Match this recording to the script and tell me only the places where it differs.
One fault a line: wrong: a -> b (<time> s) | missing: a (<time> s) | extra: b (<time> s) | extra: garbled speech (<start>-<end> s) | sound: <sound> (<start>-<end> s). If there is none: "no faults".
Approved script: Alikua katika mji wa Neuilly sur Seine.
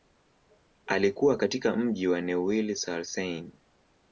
no faults